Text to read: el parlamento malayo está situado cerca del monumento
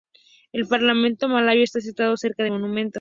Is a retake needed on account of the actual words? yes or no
no